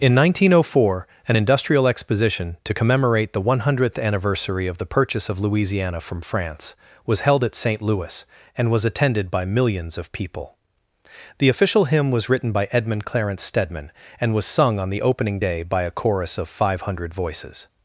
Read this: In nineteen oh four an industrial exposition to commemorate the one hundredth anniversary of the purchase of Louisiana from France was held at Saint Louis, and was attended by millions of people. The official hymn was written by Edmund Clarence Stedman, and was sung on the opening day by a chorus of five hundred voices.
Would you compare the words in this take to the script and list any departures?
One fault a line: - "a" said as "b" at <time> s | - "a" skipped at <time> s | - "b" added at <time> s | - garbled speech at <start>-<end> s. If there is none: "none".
none